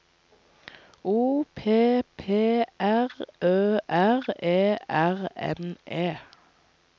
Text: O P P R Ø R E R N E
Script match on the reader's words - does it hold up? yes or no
yes